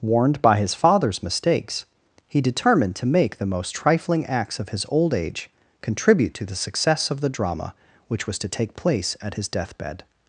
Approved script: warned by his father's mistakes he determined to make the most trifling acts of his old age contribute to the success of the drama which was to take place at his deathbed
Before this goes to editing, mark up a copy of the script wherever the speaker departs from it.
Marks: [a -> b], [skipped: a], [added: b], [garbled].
warned by his father's mistakes he determined to make the most trifling acts of his old age contribute to the success of the drama which was to take place at his deathbed